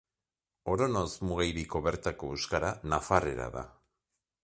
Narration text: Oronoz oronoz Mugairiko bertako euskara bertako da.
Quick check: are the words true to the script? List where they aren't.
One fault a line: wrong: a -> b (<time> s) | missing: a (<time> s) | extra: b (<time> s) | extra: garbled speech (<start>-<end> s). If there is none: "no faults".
missing: oronoz (1.1 s)
wrong: bertako -> nafarrera (2.9 s)